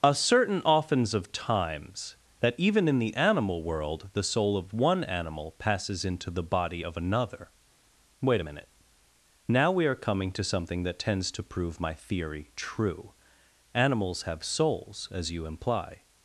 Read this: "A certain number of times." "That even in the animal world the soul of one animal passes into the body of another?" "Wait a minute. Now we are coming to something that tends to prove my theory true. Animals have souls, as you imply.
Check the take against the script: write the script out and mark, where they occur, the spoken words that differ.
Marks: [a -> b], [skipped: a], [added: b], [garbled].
"A certain [number -> oftens] of times." "That even in the animal world the soul of one animal passes into the body of another?" "Wait a minute. Now we are coming to something that tends to prove my theory true. Animals have souls, as you imply.